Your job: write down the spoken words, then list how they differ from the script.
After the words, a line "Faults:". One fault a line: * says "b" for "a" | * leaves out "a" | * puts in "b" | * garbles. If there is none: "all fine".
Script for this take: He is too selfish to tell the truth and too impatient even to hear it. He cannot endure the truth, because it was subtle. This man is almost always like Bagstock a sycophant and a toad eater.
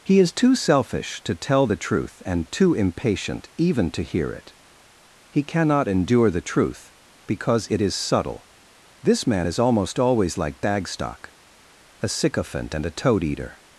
He is too selfish to tell the truth and too impatient even to hear it. He cannot endure the truth, because it is subtle. This man is almost always like Bagstock a sycophant and a toad eater.
Faults:
* says "is" for "was"